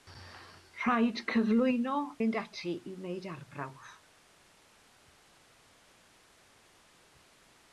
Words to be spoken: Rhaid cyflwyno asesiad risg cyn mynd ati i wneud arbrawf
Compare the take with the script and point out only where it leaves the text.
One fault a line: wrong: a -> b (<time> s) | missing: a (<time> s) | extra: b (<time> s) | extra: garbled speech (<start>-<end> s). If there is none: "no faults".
missing: asesiad risg cyn (2.0 s)